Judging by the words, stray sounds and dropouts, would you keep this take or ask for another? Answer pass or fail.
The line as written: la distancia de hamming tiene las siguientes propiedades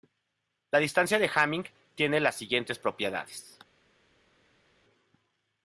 pass